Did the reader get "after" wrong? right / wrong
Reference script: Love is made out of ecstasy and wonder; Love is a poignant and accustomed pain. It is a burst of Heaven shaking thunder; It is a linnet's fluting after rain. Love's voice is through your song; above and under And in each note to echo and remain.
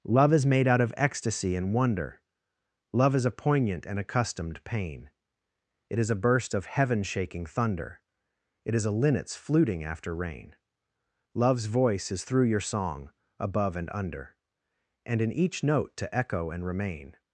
right